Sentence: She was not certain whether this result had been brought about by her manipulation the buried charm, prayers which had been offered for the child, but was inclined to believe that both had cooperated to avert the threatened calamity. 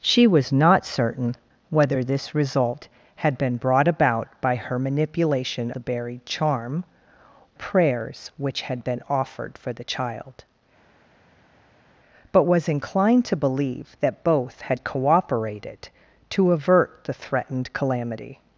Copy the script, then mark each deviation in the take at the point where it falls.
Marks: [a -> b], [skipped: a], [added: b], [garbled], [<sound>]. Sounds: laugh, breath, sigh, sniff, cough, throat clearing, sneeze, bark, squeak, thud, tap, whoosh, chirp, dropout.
She was not certain whether this result had been brought about by her manipulation the buried charm, prayers which had been offered for the child, but was inclined to believe that both had cooperated to avert the threatened calamity.